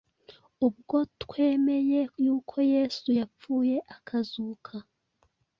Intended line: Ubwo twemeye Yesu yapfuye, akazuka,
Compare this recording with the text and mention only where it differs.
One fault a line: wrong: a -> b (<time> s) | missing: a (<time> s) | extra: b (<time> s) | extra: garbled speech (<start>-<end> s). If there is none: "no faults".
extra: yuko (2.2 s)